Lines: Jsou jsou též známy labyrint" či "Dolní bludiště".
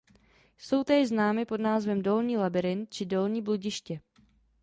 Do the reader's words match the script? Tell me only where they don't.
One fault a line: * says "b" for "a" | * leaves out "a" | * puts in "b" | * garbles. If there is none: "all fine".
* leaves out "jsou"
* puts in "pod názvem Dolní"